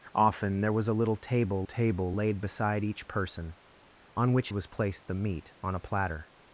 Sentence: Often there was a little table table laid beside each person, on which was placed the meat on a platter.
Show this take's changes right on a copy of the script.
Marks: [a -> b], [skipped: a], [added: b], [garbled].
Often there was a little table table laid beside each person, on which was placed the meat on a platter.